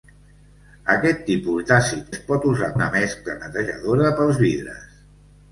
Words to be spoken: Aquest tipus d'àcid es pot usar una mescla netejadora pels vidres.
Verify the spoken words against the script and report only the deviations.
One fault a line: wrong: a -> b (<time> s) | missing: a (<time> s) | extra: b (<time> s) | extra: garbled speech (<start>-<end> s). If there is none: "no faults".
no faults